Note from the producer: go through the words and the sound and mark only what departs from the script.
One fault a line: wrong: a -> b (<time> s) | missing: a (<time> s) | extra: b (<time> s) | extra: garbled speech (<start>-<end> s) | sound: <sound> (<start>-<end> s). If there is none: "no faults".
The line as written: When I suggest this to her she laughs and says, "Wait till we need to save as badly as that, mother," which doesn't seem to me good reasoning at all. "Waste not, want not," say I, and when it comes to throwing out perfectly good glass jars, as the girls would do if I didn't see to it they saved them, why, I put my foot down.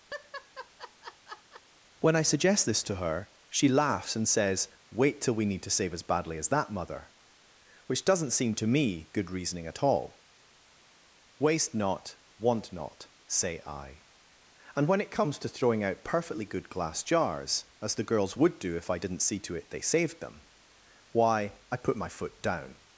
sound: laugh (0.1-1.6 s)